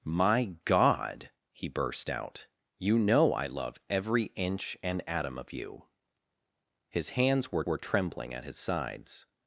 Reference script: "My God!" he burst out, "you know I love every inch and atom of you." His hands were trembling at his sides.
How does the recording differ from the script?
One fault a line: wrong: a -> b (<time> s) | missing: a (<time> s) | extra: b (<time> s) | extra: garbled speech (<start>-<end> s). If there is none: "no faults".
extra: were (7.7 s)